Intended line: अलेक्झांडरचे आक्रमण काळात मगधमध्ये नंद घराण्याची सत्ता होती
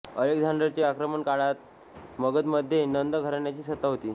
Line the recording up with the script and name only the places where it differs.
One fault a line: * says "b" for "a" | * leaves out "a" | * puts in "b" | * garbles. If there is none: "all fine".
all fine